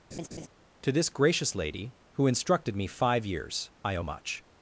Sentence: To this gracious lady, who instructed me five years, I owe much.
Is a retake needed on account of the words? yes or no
no